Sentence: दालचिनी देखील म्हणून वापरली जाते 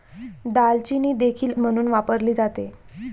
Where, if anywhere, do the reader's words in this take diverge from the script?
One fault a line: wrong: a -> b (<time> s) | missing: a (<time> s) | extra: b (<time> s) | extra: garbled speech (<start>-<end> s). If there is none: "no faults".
no faults